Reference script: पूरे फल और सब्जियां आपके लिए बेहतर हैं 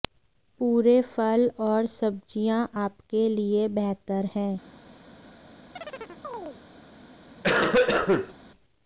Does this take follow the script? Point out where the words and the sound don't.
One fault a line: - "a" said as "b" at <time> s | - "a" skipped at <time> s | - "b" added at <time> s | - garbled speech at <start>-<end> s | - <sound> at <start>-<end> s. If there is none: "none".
- chirp at 5.8-6.6 s
- cough at 7.4-8.3 s